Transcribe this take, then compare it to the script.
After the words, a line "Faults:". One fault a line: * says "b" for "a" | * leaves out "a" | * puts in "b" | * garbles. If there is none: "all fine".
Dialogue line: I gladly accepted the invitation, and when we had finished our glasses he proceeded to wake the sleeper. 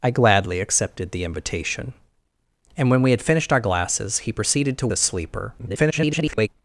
I gladly accepted the invitation, and when we had finished our glasses he proceeded to the sleeper. [garbled]
Faults:
* leaves out "wake"
* garbles